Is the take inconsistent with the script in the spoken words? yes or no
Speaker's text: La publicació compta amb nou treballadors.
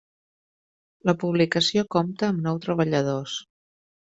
no